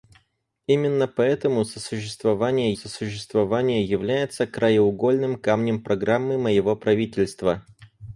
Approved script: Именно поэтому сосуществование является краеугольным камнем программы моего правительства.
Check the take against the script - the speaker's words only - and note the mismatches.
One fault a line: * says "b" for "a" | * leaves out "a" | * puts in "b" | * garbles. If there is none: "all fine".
* puts in "сосуществование"